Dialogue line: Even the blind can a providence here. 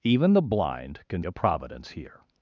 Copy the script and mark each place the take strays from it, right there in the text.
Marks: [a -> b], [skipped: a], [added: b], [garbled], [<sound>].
Even the blind can a providence here.